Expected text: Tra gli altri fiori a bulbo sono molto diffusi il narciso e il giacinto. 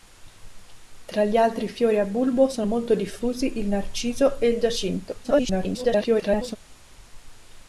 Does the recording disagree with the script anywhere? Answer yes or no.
yes